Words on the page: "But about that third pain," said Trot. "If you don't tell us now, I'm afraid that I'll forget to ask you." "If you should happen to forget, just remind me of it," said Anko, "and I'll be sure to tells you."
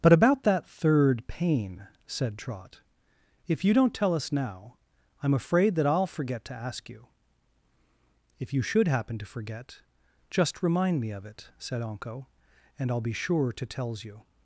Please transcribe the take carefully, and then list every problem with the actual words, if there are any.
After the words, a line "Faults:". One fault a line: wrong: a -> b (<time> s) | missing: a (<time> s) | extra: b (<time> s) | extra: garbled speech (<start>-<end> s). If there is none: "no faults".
"But about that third pain," said Trot. "If you don't tell us now, I'm afraid that I'll forget to ask you." "If you should happen to forget, just remind me of it," said Anko, "and I'll be sure to tells you."
Faults:
no faults